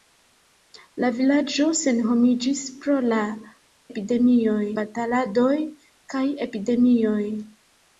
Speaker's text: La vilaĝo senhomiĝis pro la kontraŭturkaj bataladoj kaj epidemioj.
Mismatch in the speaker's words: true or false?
true